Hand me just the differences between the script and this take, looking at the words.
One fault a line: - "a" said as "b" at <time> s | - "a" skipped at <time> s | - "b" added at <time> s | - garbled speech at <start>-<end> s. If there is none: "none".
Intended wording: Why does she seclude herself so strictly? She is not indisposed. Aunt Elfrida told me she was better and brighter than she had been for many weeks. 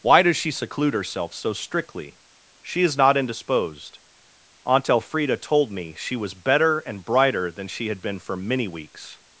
none